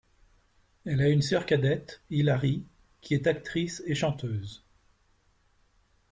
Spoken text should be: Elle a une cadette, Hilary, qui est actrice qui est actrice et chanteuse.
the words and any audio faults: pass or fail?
fail